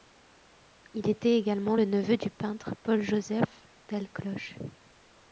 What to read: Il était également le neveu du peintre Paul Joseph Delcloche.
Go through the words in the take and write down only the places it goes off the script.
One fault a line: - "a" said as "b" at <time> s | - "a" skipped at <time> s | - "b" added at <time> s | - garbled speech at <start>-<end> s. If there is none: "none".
none